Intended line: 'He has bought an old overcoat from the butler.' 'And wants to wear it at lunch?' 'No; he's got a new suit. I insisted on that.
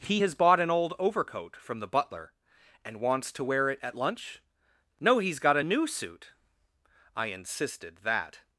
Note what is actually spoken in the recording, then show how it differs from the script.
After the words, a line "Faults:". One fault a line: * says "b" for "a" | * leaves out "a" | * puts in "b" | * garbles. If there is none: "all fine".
'He has bought an old overcoat from the butler.' 'And wants to wear it at lunch?' 'No; he's got a new suit. I insisted that.
Faults:
* leaves out "on"